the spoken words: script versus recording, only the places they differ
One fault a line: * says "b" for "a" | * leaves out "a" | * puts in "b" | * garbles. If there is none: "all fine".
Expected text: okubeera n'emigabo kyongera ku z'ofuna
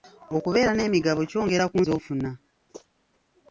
all fine